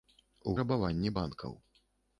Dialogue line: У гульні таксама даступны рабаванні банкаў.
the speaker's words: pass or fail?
fail